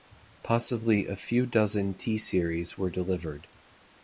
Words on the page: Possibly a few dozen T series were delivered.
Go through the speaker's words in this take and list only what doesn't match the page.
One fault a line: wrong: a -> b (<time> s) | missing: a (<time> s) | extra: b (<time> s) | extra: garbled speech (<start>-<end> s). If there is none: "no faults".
no faults